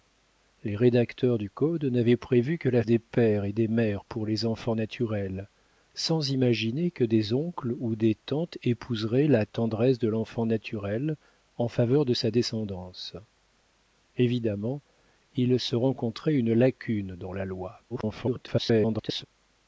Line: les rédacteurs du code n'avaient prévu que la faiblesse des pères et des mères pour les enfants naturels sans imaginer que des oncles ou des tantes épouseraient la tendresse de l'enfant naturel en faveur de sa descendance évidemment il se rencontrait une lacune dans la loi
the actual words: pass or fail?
fail